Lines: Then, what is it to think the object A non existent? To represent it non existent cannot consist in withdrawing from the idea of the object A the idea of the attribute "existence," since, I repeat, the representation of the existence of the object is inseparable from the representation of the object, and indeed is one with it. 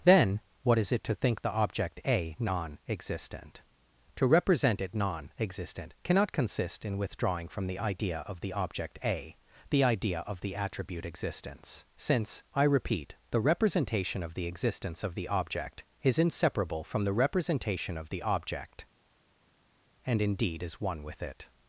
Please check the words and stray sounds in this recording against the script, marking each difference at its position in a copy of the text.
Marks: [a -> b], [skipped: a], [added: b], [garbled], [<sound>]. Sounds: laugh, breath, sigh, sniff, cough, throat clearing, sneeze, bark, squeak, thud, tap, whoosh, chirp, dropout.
Then, what is it to think the object A non existent? To represent it non existent cannot consist in withdrawing from the idea of the object A the idea of the attribute "existence," since, I repeat, the representation of the existence of the object is inseparable from the representation of the object, and indeed is one with it.